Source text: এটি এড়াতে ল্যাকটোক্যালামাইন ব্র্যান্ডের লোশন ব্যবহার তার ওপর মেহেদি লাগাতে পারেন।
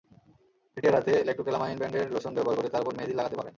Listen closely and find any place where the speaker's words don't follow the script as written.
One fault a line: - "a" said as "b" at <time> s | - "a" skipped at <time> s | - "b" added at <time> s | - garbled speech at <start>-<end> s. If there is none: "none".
- "করে" added at 2.6 s